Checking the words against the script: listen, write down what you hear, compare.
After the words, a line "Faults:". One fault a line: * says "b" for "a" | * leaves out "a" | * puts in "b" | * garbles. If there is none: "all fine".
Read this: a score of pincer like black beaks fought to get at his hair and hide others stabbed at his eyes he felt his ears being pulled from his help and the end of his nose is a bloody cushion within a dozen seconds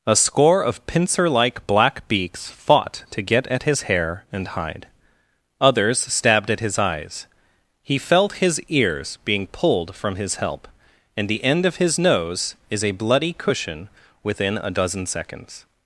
a score of pincer like black beaks fought to get at his hair and hide others stabbed at his eyes he felt his ears being pulled from his help and the end of his nose is a bloody cushion within a dozen seconds
Faults:
all fine